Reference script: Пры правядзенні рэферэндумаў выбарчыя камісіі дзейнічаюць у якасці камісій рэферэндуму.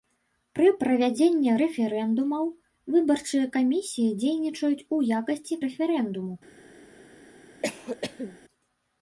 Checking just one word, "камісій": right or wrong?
wrong